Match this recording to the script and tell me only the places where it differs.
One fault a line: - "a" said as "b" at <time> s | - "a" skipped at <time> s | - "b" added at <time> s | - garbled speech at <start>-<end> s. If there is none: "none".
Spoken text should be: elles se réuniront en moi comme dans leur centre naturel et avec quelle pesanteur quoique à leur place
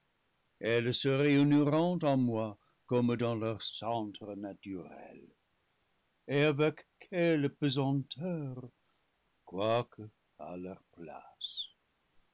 none